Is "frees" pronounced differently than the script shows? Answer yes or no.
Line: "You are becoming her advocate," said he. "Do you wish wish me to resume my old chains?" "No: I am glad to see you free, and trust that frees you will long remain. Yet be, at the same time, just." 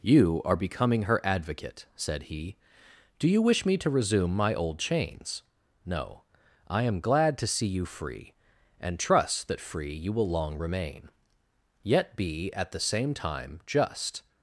yes